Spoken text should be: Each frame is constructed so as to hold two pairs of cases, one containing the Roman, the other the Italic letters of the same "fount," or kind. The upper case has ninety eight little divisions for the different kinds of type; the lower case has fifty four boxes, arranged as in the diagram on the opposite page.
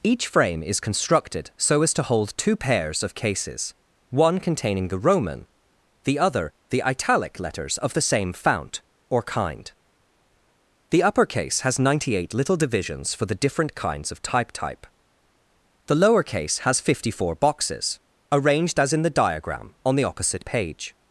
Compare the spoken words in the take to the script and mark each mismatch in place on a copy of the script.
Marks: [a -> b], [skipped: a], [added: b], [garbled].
Each frame is constructed so as to hold two pairs of cases, one containing the Roman, the other the Italic letters of the same "fount," or kind. The upper case has ninety eight little divisions for the different kinds of type; [added: type] the lower case has fifty four boxes, arranged as in the diagram on the opposite page.